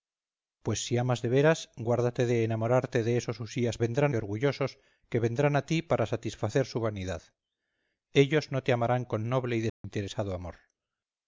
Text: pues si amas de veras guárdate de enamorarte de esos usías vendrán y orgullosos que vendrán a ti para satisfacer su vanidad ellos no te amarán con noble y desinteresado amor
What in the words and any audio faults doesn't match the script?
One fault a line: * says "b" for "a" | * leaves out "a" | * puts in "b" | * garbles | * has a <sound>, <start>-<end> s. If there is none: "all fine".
* has a dropout, 9.7-9.8 s